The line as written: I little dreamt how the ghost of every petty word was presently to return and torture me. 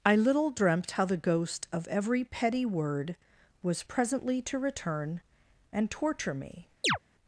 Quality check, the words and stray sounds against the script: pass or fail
fail